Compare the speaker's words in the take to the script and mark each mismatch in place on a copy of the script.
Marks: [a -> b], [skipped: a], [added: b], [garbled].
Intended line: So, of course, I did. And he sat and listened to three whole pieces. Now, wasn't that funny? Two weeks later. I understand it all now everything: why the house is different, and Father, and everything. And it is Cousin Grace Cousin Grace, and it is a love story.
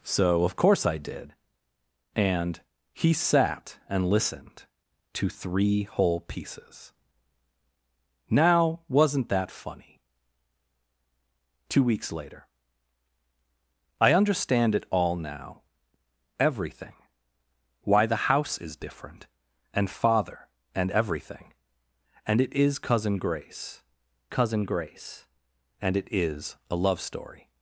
So, of course, I did. And he sat and listened to three whole pieces. Now, wasn't that funny? Two weeks later. I understand it all now everything: why the house is different, and Father, and everything. And it is Cousin Grace Cousin Grace, and it is a love story.